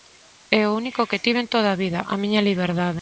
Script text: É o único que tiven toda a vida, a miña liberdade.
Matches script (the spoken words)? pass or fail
pass